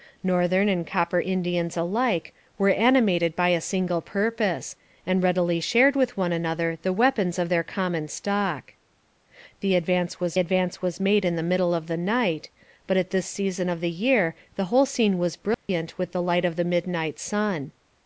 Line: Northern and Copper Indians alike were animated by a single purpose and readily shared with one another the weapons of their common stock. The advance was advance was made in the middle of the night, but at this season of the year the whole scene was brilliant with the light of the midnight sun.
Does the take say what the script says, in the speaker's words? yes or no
yes